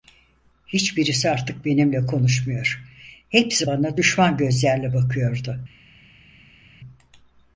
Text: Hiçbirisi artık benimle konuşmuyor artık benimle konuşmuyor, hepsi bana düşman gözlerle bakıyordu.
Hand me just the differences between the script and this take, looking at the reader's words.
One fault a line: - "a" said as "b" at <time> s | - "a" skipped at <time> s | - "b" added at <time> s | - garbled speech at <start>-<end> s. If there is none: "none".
- "artık benimle konuşmuyor" skipped at 2.8 s